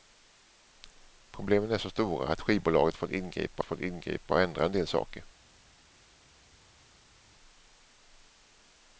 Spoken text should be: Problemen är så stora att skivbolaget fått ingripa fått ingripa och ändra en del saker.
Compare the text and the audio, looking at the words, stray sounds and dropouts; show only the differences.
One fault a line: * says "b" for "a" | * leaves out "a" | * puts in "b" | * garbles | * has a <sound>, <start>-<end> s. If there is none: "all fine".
all fine